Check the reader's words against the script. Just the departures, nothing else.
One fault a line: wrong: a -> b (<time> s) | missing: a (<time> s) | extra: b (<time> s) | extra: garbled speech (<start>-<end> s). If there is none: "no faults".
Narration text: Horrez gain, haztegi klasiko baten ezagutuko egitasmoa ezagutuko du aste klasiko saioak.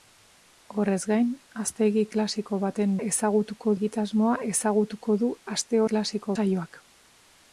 no faults